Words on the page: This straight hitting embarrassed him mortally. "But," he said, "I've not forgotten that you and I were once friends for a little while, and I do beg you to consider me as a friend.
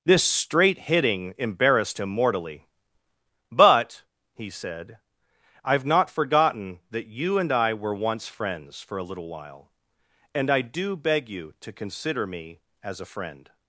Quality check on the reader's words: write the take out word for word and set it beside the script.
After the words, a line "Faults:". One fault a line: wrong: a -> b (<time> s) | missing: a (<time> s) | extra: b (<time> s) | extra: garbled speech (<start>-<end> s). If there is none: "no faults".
This straight hitting embarrassed him mortally. "But," he said, "I've not forgotten that you and I were once friends for a little while, and I do beg you to consider me as a friend.
Faults:
no faults